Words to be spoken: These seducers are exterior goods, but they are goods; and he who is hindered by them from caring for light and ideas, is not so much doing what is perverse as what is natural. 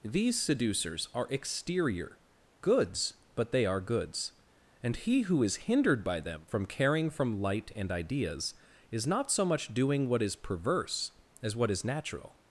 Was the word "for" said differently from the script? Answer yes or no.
yes